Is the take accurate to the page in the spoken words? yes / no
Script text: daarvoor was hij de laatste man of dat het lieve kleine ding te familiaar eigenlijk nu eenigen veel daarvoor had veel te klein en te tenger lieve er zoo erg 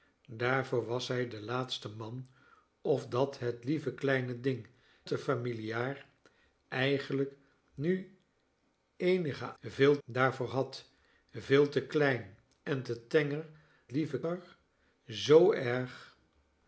yes